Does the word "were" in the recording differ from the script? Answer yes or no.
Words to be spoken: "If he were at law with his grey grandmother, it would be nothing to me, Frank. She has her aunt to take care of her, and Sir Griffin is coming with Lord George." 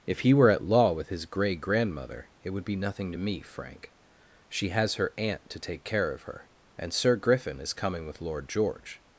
no